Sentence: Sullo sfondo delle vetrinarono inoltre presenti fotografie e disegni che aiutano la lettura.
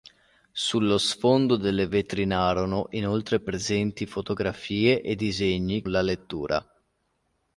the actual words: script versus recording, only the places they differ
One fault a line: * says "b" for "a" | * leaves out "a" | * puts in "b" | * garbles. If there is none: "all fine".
* leaves out "che aiutano"